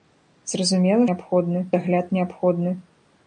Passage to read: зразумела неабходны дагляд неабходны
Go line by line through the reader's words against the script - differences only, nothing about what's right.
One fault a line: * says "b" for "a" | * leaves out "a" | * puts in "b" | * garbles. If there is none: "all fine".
all fine